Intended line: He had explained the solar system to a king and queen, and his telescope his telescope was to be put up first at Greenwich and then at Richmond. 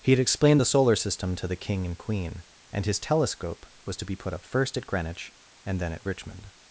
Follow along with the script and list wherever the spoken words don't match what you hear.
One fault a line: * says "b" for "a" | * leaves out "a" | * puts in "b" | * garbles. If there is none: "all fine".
* says "the" for "a"
* leaves out "his telescope"